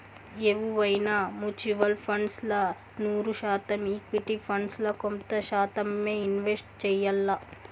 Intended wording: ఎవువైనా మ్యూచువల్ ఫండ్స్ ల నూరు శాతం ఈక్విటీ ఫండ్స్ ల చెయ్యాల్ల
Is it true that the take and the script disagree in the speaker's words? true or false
true